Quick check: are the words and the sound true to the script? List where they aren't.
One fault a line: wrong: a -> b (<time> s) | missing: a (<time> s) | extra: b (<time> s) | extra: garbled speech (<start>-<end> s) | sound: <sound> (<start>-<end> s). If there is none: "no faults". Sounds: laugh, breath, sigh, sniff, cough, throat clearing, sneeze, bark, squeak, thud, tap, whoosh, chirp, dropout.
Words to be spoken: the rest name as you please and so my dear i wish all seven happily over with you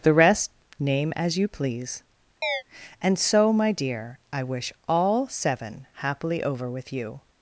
sound: chirp (2.4-2.6 s)